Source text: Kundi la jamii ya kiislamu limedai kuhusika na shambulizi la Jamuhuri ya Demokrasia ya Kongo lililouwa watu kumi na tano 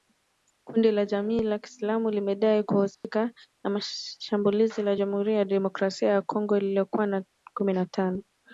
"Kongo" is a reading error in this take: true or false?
false